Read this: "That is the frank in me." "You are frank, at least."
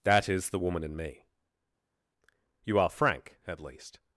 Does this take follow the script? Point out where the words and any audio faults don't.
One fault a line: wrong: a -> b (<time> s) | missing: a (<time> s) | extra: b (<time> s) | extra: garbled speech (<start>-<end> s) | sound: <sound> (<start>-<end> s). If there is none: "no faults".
wrong: frank -> woman (0.6 s)